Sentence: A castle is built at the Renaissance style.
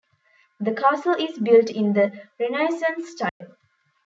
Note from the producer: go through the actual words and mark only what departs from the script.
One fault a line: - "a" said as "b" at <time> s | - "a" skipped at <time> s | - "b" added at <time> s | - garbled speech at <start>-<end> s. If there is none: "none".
- "A" said as "The" at 0.6 s
- "at" said as "in" at 1.7 s